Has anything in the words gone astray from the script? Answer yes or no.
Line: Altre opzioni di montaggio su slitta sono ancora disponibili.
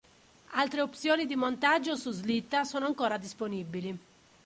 no